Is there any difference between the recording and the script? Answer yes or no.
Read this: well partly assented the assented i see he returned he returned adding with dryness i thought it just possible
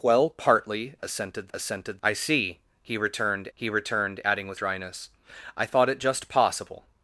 no